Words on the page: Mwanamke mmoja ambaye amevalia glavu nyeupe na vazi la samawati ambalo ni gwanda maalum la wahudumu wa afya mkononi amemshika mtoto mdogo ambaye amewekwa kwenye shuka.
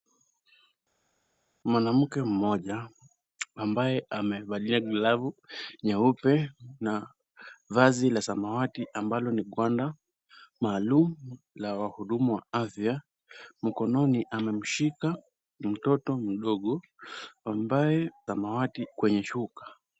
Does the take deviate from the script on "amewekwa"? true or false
true